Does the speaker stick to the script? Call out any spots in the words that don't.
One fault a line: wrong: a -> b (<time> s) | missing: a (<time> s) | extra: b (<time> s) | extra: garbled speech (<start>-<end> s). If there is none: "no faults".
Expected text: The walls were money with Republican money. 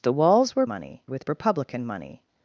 no faults